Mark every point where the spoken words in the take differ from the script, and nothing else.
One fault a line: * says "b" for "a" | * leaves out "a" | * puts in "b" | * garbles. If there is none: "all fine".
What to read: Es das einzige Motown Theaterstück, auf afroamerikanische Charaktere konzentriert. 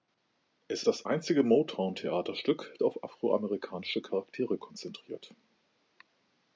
all fine